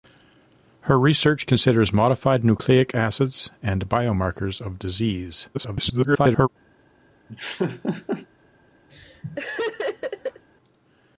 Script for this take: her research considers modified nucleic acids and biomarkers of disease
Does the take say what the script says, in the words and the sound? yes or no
no